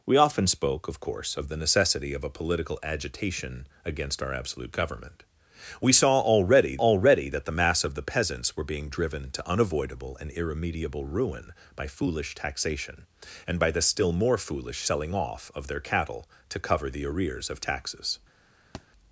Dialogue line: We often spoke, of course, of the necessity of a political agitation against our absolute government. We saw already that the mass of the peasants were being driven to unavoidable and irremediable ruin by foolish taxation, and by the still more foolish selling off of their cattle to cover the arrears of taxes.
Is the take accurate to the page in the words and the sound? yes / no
no